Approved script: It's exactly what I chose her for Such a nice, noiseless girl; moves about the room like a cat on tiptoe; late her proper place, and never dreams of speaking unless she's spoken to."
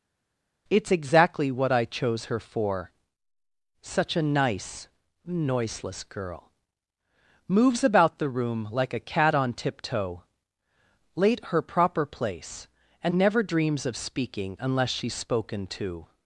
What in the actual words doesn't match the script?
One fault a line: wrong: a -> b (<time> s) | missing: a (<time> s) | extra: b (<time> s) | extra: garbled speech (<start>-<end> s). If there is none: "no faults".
no faults